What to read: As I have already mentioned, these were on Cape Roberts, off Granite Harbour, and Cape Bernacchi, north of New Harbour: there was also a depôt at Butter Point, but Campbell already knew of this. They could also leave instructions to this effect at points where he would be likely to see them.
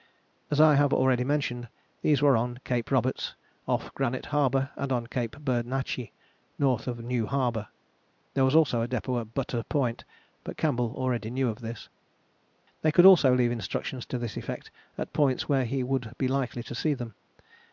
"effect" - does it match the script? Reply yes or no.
yes